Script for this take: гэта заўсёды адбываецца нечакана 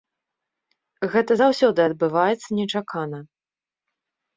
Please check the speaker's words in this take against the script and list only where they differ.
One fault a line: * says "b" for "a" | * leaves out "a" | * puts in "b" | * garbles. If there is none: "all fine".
all fine